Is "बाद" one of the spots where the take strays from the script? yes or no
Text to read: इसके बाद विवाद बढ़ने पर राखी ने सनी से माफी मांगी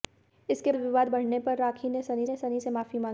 yes